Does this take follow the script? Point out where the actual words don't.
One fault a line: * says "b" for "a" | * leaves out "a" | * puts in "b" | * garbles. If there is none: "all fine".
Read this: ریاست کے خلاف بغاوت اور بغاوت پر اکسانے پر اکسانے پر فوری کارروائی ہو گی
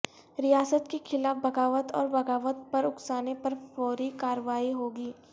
* leaves out "اکسانے پر"